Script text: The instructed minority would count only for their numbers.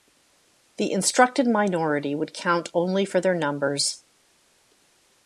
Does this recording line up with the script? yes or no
yes